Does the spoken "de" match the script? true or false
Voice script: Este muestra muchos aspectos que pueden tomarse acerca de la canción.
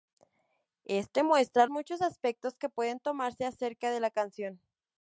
true